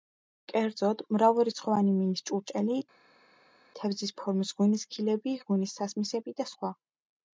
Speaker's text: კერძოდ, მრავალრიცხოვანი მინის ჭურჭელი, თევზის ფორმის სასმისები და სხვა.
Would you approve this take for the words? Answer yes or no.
no